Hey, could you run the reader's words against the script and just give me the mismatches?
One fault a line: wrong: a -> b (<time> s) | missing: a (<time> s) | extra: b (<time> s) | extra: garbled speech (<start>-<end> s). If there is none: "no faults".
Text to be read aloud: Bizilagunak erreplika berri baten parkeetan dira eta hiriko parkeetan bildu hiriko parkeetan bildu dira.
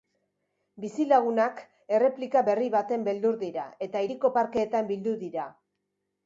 wrong: parkeetan -> beldur (3.1 s)
missing: hiriko parkeetan bildu (5.1 s)